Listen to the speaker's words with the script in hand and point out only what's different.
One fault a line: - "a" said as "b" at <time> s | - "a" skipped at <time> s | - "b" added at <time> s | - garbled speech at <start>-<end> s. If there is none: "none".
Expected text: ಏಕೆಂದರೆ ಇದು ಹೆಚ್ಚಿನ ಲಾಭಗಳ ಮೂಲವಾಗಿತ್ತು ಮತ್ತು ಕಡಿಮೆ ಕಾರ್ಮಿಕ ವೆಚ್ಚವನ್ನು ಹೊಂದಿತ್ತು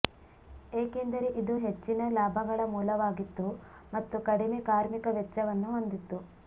none